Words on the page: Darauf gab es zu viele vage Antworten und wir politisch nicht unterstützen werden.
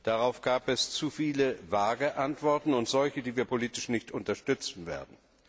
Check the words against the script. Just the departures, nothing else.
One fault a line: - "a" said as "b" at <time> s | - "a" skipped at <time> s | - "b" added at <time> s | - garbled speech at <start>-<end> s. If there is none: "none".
- "solche die" added at 2.9 s